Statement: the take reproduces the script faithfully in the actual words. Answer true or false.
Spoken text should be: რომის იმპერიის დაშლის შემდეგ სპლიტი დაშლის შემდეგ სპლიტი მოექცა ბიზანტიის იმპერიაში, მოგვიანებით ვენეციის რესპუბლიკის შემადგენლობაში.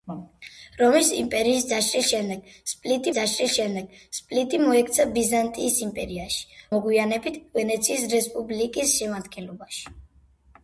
true